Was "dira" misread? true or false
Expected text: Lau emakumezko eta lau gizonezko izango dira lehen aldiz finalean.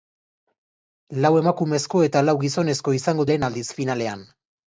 true